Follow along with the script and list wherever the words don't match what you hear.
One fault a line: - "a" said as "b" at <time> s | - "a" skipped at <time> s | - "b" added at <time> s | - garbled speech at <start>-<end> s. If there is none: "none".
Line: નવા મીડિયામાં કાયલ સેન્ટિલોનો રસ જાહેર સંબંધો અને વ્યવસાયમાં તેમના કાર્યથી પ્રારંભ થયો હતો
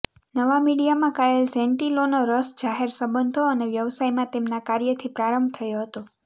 none